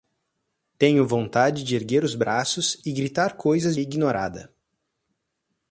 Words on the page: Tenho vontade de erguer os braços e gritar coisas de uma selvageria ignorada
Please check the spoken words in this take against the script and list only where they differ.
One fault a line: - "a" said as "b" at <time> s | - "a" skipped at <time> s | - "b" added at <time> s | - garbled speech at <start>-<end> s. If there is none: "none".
- "de uma selvageria" skipped at 3.8 s